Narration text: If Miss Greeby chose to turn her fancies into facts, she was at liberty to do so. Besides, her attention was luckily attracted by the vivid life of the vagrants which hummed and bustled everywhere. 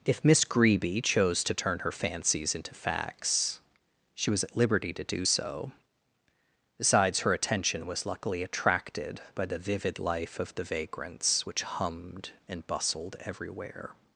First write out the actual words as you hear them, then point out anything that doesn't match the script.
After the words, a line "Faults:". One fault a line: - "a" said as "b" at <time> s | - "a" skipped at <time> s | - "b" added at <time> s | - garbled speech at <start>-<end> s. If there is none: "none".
If Miss Greeby chose to turn her fancies into facts, she was at liberty to do so. Besides, her attention was luckily attracted by the vivid life of the vagrants which hummed and bustled everywhere.
Faults:
none